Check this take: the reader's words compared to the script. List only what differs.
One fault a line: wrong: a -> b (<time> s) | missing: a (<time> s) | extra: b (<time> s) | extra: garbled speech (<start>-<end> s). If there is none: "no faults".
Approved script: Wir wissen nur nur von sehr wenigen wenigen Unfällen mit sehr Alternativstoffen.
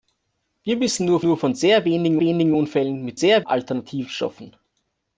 no faults